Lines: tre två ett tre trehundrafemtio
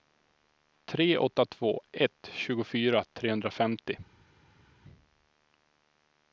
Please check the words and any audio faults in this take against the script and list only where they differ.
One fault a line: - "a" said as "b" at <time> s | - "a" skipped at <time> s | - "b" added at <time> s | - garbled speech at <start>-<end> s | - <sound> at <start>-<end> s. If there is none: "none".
- "åtta" added at 1.2 s
- "tre" said as "tjugofyra" at 2.3 s